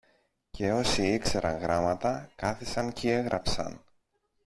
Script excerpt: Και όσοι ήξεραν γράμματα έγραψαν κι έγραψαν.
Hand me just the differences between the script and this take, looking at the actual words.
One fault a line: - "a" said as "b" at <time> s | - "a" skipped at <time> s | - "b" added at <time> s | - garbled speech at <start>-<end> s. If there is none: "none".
- "έγραψαν" said as "κάθισαν" at 2.4 s